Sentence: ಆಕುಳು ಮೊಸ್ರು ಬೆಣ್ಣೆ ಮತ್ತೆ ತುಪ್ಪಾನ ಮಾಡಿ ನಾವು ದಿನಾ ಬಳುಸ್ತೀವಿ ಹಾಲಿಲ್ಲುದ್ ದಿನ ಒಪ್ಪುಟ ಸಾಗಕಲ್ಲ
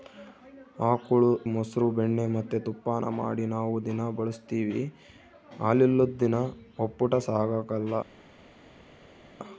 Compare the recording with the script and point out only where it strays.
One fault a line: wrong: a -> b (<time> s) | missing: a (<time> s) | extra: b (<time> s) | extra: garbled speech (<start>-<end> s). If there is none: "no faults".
no faults